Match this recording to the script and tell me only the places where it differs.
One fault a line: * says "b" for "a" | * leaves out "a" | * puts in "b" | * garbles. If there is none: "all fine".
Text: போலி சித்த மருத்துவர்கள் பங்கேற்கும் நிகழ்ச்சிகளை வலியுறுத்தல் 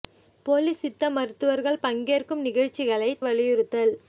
all fine